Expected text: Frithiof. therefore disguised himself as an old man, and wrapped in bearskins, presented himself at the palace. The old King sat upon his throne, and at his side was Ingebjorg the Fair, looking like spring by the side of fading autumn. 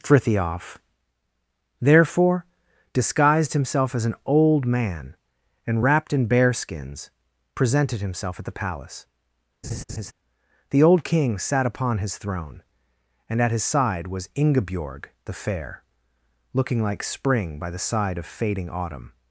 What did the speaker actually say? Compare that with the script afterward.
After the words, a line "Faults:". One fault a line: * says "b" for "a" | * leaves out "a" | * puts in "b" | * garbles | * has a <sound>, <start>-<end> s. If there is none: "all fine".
Frithiof. therefore disguised himself as an old man, and wrapped in bearskins, presented himself at the palace. The old King sat upon his throne, and at his side was Ingebjorg the Fair, looking like spring by the side of fading autumn.
Faults:
* has a laugh, 9.6-10.1 s